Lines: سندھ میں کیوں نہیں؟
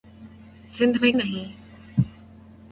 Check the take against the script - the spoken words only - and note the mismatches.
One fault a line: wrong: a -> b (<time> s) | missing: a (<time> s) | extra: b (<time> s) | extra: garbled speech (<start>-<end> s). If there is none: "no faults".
missing: کیوں (1.1 s)